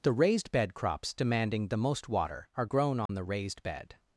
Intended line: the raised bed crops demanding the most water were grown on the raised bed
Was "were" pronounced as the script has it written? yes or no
no